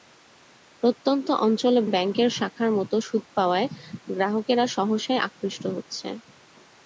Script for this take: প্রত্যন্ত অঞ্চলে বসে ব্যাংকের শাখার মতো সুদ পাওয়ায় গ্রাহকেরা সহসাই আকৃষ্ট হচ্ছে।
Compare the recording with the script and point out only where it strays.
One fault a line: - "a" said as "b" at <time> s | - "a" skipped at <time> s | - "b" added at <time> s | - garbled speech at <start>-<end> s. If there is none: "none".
- "বসে" skipped at 1.8 s